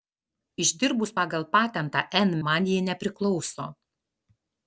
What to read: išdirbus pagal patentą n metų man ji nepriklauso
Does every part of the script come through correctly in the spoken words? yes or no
no